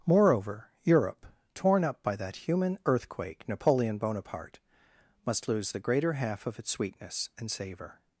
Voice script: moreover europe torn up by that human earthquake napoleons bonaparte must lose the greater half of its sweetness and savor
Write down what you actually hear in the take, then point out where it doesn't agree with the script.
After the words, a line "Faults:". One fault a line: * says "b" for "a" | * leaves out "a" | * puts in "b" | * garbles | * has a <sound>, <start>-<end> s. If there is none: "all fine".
moreover europe torn up by that human earthquake napoleon bonaparte must lose the greater half of its sweetness and savor
Faults:
* says "napoleon" for "napoleons"